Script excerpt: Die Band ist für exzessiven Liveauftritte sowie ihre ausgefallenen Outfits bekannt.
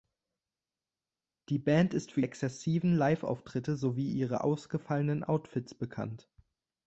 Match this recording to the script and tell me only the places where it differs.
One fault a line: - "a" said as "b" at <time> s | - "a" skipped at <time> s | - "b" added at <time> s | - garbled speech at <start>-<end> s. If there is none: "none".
none